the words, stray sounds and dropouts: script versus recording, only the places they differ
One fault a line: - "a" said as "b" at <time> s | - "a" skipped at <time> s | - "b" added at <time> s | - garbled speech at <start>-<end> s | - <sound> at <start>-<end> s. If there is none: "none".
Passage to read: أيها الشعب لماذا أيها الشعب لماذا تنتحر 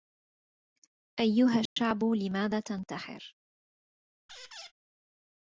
- dropout at 1.7-1.8 s
- "أيها الشعب لماذا" skipped at 2.6 s
- squeak at 4.3-4.7 s